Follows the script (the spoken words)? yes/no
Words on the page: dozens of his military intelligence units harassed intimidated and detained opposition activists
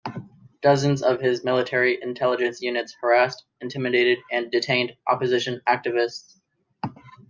yes